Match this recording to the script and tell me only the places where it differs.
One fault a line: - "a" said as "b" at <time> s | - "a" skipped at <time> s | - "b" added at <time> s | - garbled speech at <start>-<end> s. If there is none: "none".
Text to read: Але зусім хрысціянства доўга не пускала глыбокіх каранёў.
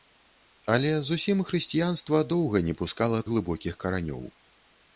none